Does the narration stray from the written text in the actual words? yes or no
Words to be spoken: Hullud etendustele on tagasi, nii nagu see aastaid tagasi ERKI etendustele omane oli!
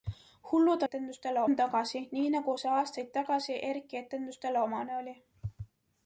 no